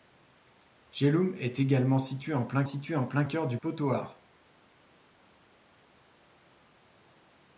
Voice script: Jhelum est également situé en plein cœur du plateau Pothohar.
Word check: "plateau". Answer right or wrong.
wrong